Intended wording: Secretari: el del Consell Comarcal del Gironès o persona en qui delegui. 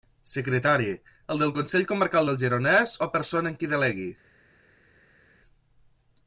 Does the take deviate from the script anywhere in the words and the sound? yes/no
no